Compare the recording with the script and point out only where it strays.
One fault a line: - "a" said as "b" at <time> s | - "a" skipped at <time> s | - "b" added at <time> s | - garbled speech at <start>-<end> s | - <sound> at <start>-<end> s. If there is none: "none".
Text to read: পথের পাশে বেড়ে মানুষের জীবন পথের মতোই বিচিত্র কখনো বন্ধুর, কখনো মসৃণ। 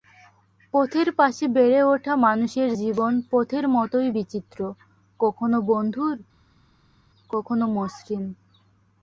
- "ওঠা" added at 1.9 s